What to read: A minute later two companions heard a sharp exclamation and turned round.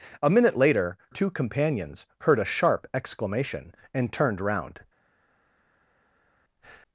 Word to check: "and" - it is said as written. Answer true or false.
true